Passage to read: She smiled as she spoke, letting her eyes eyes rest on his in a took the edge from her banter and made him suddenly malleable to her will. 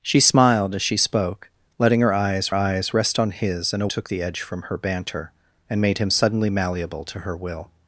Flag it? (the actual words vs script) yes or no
no